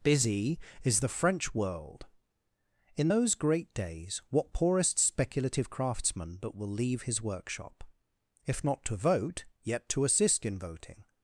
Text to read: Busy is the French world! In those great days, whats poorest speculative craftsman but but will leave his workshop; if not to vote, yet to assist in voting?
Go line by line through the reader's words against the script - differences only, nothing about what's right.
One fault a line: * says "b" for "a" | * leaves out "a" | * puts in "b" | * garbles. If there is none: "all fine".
* says "what" for "whats"
* leaves out "but"